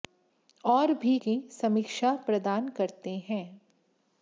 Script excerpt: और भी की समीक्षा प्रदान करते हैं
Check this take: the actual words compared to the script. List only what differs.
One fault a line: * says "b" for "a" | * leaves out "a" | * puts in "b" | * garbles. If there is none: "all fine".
all fine